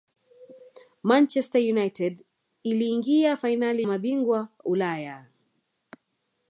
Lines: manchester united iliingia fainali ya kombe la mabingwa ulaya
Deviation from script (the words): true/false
true